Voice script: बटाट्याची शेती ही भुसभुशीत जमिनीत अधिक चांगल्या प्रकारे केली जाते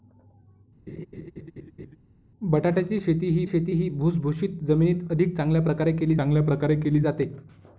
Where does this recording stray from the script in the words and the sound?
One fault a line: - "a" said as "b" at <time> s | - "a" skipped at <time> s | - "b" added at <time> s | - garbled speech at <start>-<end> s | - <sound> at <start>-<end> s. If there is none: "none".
- laugh at 0.9-2.0 s
- "शेती ही" added at 3.5 s
- "चांगल्या प्रकारे केली" added at 6.2 s